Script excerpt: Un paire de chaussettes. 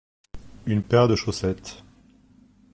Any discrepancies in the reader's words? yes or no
yes